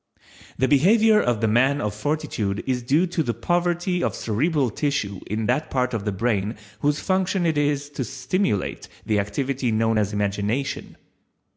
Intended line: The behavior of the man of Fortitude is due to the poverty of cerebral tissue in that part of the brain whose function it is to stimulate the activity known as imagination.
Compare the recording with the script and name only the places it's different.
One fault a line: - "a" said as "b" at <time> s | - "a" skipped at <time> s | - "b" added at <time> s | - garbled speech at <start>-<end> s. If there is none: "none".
none